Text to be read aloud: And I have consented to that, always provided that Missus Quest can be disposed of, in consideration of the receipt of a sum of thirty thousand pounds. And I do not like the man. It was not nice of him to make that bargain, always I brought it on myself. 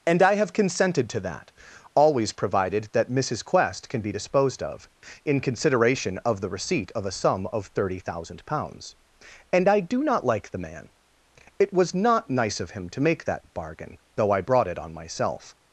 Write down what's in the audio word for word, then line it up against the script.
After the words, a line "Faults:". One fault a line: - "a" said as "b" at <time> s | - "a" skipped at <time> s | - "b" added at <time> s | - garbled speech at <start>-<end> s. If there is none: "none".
And I have consented to that, always provided that Missus Quest can be disposed of, in consideration of the receipt of a sum of thirty thousand pounds. And I do not like the man. It was not nice of him to make that bargain, though I brought it on myself.
Faults:
- "always" said as "though" at 14.1 s